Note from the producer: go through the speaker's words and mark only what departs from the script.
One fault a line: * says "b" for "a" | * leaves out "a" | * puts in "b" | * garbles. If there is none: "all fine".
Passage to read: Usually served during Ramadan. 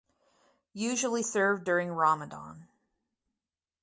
all fine